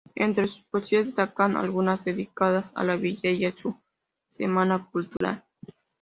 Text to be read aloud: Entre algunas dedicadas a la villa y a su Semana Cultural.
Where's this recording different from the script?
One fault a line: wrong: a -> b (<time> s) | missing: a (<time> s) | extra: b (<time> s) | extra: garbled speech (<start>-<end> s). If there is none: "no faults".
extra: sus poesías destacan (0.4 s)